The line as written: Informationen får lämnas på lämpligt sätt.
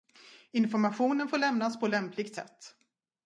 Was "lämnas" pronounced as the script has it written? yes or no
yes